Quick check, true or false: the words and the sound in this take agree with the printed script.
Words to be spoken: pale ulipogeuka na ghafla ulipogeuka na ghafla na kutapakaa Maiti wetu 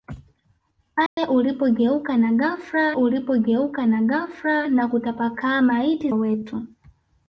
false